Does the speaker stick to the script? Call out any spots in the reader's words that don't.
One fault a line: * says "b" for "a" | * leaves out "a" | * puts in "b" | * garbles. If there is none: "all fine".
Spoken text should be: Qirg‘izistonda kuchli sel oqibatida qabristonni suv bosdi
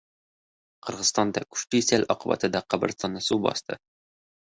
all fine